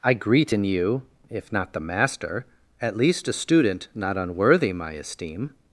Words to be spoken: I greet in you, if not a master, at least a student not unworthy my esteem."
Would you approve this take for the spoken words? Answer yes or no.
no